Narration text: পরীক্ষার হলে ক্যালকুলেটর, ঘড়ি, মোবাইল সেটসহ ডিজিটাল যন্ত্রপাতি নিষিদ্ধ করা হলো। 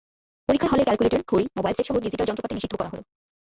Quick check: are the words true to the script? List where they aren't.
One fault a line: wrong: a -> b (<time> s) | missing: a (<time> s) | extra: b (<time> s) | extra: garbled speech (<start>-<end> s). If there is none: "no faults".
no faults